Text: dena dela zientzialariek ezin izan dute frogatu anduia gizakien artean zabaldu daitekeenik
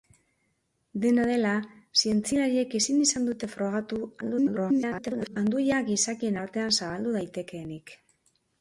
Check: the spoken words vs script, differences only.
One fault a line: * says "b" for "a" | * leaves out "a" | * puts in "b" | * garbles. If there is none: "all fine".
* garbles